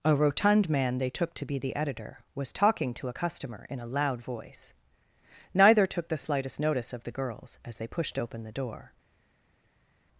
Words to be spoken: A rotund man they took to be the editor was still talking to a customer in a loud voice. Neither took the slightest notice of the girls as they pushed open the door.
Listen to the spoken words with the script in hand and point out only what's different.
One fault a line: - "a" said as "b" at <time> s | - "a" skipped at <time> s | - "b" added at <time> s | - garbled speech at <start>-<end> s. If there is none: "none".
- "still" skipped at 2.5 s